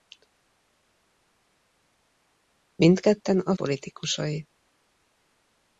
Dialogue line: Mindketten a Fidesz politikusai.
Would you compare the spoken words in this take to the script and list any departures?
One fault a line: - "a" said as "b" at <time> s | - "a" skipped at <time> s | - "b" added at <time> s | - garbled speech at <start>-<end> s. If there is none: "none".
- "Fidesz" skipped at 3.5 s